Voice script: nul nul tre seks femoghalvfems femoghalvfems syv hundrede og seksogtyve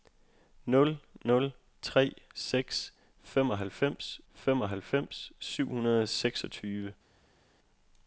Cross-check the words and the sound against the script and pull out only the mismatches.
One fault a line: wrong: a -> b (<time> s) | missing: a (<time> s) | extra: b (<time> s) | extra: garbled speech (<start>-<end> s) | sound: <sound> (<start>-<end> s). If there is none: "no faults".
no faults